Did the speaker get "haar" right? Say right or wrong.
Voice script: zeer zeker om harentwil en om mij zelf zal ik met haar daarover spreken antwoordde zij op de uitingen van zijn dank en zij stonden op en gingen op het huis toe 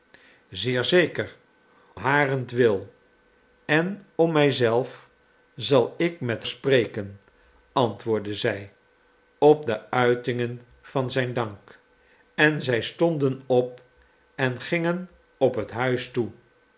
wrong